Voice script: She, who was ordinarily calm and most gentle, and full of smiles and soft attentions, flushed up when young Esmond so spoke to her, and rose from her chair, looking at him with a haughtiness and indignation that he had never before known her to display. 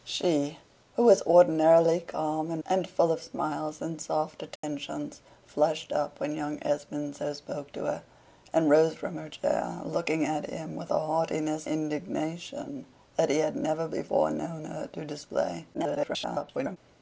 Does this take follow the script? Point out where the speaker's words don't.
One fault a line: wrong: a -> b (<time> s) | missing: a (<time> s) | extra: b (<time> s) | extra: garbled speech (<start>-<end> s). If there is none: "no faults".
missing: most gentle (2.6 s)
missing: and (11.7 s)
extra: garbled speech (15.7-16.8 s)